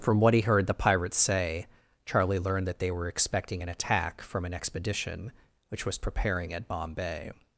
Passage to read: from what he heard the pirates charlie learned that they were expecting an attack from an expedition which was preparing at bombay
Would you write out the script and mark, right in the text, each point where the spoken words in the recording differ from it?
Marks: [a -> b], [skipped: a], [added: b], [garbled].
from what he heard the pirates [added: say] charlie learned that they were expecting an attack from an expedition which was preparing at bombay